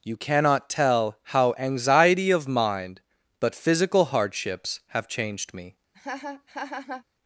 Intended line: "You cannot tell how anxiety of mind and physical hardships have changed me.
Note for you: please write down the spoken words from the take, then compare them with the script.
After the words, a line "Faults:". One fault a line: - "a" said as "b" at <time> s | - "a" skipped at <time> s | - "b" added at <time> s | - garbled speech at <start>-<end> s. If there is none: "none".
"You cannot tell how anxiety of mind but physical hardships have changed me.
Faults:
- "and" said as "but" at 3.4 s